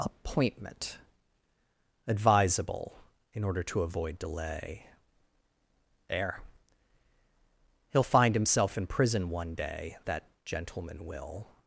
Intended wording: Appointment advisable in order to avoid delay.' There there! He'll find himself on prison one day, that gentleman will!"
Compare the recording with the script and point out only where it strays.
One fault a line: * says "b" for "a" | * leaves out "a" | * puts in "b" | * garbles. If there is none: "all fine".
* leaves out "there"
* says "in" for "on"